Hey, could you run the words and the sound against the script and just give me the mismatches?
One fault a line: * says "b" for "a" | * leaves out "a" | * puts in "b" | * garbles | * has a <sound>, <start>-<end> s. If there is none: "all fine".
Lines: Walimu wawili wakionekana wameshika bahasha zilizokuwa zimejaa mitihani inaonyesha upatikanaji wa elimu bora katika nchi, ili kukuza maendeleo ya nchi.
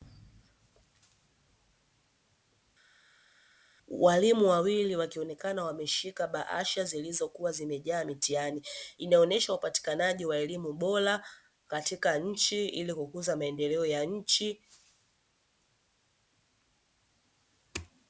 all fine